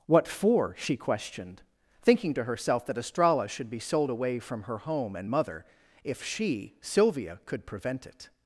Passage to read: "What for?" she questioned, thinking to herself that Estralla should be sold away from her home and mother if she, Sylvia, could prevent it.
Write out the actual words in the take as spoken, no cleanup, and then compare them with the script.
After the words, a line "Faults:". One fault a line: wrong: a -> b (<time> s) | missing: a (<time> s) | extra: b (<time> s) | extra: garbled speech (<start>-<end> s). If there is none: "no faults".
"What for?" she questioned, thinking to herself that Estralla should be sold away from her home and mother if she, Sylvia, could prevent it.
Faults:
no faults